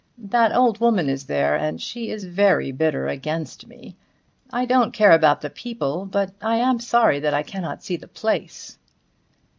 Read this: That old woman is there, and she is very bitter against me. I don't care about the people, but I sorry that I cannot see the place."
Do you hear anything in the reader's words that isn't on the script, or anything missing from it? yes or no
yes